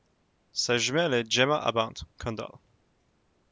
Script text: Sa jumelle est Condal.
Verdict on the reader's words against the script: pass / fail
fail